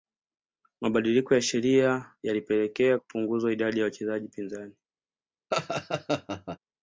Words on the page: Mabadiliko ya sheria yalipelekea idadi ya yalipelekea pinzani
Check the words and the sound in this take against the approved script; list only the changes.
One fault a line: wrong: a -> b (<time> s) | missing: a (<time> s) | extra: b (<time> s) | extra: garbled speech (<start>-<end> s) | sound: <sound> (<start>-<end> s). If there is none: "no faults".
extra: kupunguzwa (2.9 s)
wrong: yalipelekea -> wachezaji (3.8 s)
sound: laugh (5.5-6.6 s)